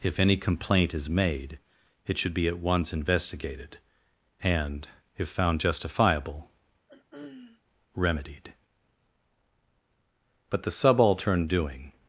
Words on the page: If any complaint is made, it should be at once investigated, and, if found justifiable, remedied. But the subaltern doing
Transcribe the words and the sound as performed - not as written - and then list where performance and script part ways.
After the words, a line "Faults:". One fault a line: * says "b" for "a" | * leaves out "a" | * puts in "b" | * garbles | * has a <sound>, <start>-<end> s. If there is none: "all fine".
If any complaint is made, it should be at once investigated, and, if found justifiable, remedied. But the subaltern doing
Faults:
* has a throat clearing, 6.9-7.6 s